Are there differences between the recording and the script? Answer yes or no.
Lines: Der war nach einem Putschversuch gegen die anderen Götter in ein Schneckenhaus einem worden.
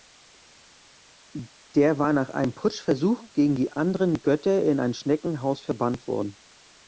yes